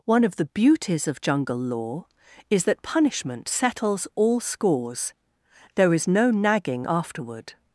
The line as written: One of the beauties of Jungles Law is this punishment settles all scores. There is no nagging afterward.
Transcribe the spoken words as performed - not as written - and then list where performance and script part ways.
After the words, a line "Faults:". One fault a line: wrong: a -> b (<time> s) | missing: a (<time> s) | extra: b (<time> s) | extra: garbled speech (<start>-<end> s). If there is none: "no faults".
One of the beauties of Jungle Law is that punishment settles all scores. There is no nagging afterward.
Faults:
wrong: Jungles -> Jungle (1.2 s)
wrong: this -> that (2.6 s)